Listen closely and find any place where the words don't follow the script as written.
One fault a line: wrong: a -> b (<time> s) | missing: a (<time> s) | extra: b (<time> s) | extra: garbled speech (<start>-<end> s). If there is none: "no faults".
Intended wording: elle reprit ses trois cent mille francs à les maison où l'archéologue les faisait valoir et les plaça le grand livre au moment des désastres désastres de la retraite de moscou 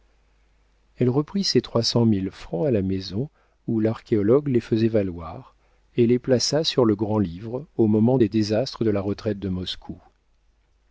wrong: les -> la (2.7 s)
extra: sur (6.6 s)
missing: désastres (8.8 s)